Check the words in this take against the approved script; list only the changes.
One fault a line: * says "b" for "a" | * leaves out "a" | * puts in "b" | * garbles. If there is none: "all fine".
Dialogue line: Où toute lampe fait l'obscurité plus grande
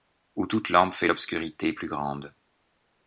all fine